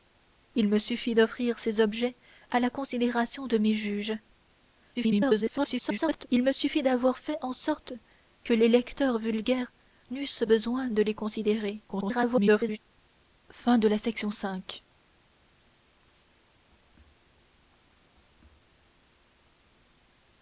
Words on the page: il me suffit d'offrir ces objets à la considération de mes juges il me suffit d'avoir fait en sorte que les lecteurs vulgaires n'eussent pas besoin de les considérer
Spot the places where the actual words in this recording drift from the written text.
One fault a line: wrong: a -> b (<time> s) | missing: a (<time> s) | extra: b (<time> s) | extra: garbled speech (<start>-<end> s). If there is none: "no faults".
extra: garbled speech (4.9-6.3 s)
missing: pas (10.4 s)
extra: garbled speech (11.9-12.8 s)